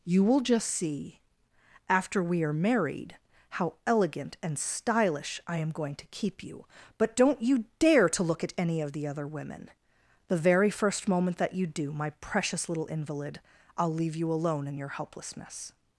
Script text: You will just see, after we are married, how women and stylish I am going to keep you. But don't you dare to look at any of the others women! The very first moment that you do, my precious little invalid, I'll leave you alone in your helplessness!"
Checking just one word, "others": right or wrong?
wrong